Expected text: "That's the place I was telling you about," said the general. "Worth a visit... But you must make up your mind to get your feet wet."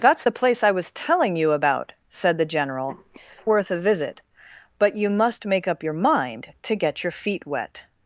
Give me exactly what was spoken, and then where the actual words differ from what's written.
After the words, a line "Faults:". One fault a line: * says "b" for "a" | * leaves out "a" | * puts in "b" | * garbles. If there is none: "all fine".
"That's the place I was telling you about," said the general. "Worth a visit... But you must make up your mind to get your feet wet."
Faults:
all fine